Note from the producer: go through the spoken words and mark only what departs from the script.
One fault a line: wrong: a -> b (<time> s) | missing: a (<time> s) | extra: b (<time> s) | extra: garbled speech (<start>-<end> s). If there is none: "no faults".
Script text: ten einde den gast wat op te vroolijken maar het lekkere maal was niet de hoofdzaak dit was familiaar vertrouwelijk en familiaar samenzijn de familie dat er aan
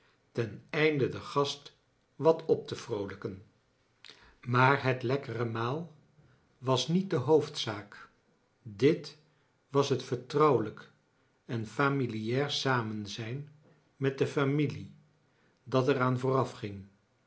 wrong: familiaar -> het (9.9 s)
extra: met (13.9 s)